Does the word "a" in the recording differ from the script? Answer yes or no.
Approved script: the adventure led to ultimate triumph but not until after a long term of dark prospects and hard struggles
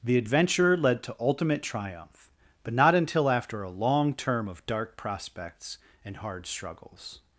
no